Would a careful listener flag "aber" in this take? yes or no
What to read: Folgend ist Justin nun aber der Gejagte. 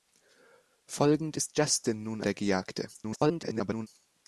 yes